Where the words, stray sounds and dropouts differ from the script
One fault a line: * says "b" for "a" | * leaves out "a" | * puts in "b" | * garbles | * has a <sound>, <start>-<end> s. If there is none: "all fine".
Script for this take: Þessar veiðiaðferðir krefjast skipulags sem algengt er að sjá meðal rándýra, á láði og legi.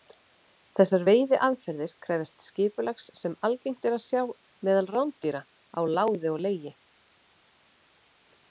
all fine